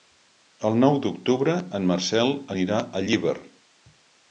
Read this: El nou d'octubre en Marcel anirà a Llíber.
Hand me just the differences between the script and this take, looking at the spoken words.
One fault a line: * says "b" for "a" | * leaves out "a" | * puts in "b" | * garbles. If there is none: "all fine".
all fine